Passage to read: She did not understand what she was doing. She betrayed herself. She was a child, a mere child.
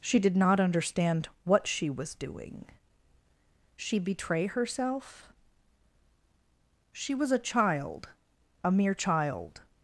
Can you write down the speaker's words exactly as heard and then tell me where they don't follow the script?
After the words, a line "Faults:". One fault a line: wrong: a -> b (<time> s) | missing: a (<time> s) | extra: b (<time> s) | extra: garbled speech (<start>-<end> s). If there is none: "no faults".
She did not understand what she was doing. She betray herself. She was a child, a mere child.
Faults:
wrong: betrayed -> betray (4.0 s)